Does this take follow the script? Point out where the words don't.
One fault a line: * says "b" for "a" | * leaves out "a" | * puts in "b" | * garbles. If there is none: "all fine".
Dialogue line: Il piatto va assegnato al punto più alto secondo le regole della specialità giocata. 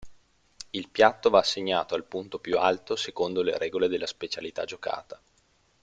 all fine